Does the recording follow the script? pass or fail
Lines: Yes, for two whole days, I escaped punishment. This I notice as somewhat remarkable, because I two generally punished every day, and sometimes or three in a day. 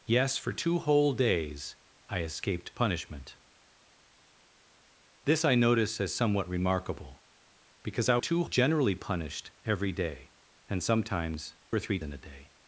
pass